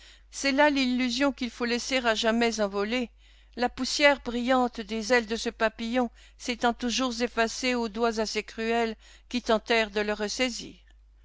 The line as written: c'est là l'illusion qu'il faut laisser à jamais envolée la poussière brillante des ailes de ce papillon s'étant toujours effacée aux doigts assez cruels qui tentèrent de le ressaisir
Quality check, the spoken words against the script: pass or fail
pass